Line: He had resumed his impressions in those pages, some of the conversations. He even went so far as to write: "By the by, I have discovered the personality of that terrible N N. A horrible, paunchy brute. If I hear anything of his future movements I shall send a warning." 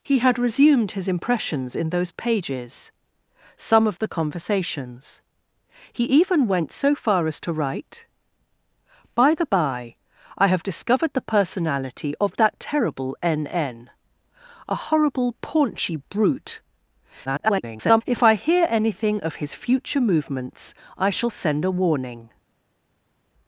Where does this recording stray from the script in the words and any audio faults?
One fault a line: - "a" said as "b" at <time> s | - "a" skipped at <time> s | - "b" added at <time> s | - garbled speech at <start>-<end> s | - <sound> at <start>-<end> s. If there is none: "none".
- garbled speech at 17.2-18.0 s